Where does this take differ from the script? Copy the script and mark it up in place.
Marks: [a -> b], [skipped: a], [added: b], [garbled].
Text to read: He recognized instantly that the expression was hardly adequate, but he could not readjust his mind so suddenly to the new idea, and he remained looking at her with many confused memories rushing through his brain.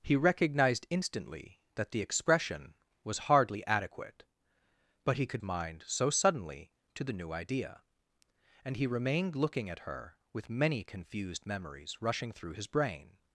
He recognized instantly that the expression was hardly adequate, but he could [skipped: not readjust his] mind so suddenly to the new idea, and he remained looking at her with many confused memories rushing through his brain.